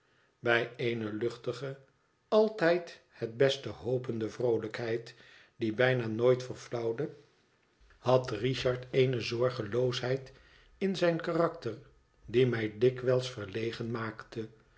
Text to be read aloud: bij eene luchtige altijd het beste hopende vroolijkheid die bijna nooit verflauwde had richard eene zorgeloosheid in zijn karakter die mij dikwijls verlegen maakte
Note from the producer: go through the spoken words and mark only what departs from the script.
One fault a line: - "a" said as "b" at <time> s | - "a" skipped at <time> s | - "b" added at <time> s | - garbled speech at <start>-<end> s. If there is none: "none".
none